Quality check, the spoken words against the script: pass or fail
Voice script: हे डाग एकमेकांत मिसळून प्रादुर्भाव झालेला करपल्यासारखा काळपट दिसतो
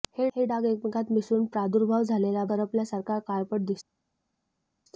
pass